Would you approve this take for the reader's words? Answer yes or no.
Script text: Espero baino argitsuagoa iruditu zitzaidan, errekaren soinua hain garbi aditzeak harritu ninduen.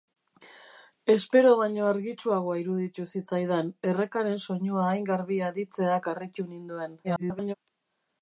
no